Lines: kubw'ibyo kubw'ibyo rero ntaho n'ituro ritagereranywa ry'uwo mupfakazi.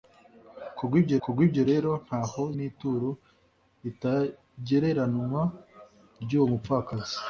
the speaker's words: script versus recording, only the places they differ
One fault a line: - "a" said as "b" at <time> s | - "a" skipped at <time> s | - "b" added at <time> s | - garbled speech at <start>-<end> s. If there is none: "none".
none